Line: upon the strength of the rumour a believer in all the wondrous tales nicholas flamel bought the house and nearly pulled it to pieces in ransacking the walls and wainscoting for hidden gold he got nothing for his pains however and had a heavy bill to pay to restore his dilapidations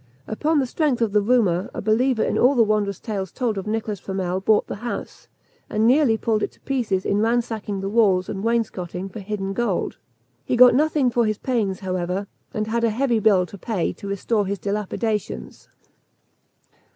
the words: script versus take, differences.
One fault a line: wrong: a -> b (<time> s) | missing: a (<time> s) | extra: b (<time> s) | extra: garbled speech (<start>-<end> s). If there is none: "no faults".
extra: told of (3.3 s)